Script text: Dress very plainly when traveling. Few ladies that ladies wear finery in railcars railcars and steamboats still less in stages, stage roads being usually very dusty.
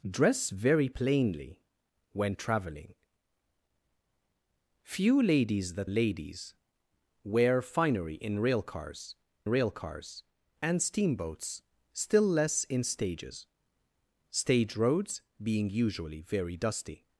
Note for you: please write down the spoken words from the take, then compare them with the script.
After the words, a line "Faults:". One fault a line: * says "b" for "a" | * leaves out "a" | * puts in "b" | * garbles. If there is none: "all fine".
Dress very plainly when traveling. Few ladies that ladies wear finery in railcars railcars and steamboats still less in stages, stage roads being usually very dusty.
Faults:
all fine